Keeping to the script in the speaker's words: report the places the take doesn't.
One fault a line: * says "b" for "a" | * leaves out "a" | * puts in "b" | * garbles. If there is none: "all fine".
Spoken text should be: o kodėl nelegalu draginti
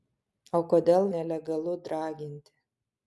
all fine